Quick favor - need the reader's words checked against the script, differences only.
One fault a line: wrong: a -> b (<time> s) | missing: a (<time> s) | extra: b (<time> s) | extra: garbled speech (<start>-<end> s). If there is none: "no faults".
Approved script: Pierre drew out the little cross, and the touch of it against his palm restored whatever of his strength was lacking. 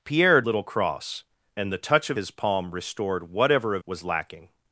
missing: drew out the (0.4 s)
missing: it against (2.2 s)
missing: his strength (3.8 s)